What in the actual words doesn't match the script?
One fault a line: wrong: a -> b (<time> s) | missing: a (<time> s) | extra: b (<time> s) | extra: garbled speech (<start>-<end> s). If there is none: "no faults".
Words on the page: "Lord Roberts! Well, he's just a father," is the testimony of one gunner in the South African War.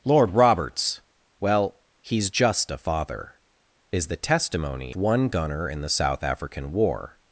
missing: of (4.9 s)